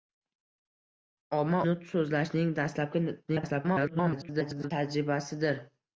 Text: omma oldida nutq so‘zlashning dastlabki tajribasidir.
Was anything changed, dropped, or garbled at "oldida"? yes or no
yes